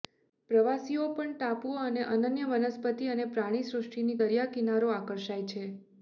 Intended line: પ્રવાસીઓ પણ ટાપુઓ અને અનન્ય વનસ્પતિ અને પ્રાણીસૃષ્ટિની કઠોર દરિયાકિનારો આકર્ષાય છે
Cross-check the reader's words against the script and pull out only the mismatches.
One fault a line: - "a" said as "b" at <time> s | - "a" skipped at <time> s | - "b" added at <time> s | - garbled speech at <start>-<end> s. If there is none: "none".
- "કઠોર" skipped at 4.2 s